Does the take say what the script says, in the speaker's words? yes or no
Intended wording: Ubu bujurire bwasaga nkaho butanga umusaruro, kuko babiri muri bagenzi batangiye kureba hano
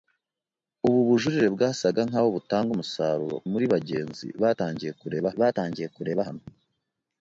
no